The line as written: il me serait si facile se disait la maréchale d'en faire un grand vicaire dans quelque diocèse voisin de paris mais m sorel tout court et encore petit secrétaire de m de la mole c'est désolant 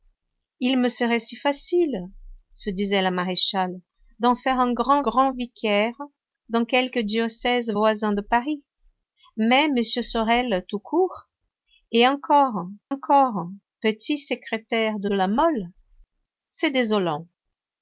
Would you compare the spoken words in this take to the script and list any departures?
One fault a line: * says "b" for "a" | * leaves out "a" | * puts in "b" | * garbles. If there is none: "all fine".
* puts in "grand"
* puts in "encore"
* leaves out "m"